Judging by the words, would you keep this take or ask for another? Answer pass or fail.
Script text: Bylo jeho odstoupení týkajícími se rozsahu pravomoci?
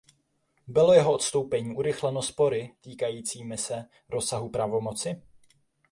fail